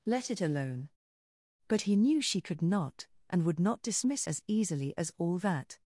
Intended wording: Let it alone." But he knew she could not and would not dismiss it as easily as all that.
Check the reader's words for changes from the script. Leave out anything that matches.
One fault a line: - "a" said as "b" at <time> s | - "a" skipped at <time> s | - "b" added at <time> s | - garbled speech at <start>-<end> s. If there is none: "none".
- "it" skipped at 4.3 s